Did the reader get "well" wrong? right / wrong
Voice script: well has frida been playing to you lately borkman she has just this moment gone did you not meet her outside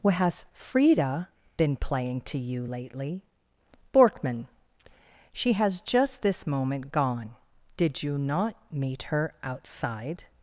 wrong